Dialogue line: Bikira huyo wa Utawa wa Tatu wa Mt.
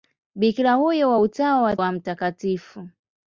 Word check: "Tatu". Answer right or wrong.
wrong